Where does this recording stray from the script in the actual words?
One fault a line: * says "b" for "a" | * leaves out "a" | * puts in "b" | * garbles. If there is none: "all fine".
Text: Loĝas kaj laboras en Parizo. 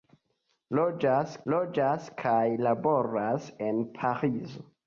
* puts in "loĝas"